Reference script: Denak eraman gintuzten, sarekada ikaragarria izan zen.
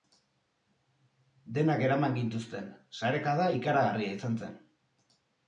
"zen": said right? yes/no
yes